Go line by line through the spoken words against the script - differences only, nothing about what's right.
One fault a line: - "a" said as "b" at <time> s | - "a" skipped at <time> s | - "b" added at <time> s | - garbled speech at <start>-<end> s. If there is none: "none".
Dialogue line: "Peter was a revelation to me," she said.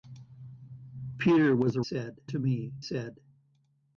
- "revelation" said as "said" at 1.8 s
- "she" skipped at 2.8 s